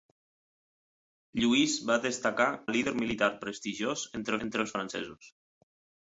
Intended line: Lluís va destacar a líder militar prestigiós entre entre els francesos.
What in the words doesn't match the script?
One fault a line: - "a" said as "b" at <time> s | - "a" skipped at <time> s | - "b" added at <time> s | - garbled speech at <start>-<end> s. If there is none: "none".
none